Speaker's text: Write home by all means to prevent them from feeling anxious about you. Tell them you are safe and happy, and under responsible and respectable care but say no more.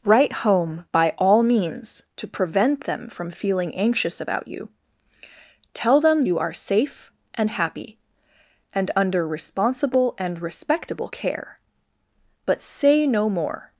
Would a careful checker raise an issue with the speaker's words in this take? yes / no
no